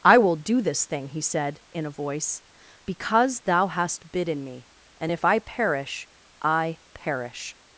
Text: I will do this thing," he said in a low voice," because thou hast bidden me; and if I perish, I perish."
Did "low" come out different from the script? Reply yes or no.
yes